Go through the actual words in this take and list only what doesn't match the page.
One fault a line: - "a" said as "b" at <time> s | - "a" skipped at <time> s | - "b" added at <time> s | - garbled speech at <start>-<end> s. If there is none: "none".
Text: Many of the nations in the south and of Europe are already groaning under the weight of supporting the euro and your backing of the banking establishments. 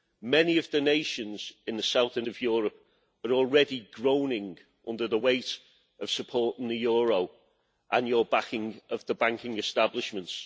none